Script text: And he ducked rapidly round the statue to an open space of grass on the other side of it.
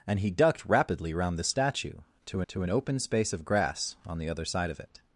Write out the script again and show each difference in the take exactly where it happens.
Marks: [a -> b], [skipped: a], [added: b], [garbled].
And he ducked rapidly round the statue to [added: to] an open space of grass on the other side of it.